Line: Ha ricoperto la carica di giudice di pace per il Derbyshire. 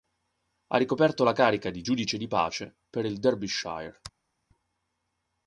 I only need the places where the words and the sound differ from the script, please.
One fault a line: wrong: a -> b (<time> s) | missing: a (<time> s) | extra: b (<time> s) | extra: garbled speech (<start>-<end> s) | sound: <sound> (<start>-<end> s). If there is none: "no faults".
no faults